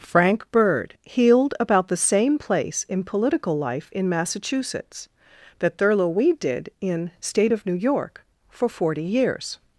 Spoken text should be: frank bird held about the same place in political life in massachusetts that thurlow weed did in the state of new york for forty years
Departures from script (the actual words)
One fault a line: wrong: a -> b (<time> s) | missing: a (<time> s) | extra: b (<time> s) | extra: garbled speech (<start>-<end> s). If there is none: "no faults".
wrong: held -> healed (1.1 s)
missing: the (7.1 s)